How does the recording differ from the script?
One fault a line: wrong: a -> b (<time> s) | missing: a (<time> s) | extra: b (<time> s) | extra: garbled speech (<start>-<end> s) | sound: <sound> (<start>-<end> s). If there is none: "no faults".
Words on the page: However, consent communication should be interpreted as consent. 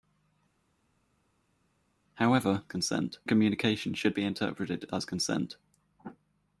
no faults